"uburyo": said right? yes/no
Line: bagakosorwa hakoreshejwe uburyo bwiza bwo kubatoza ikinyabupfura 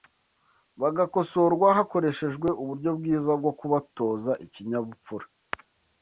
yes